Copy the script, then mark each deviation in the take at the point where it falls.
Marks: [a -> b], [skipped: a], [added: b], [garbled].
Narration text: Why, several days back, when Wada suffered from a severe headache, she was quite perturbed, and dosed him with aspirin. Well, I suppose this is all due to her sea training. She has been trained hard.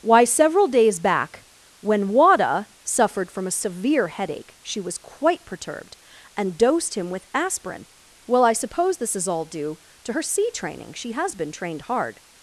Why, several days back, when Wada suffered from a severe headache, she was quite perturbed, and dosed him with aspirin. Well, I suppose this is all due to her sea training. She has been trained hard.